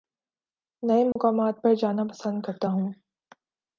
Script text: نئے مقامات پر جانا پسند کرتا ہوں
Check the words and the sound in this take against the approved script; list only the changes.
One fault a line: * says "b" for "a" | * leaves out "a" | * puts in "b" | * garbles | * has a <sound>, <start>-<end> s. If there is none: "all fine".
* has a dropout, 1.1-1.2 s